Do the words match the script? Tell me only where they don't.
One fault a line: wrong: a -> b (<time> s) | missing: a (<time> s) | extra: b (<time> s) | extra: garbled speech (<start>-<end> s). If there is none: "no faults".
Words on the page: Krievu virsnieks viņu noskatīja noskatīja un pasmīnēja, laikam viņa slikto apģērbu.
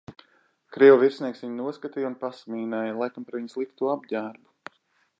missing: noskatīja (2.1 s)
extra: par (3.3 s)